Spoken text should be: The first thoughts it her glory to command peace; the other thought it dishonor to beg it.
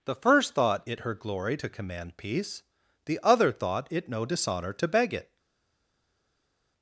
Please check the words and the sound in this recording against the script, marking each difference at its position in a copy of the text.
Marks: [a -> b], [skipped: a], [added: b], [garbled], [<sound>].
The first [thoughts -> thought] it her glory to command peace; the other thought it [added: no] dishonor to beg it.